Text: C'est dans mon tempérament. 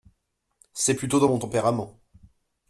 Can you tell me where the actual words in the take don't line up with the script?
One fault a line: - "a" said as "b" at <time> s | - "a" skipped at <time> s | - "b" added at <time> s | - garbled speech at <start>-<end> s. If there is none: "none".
- "plutôt" added at 0.9 s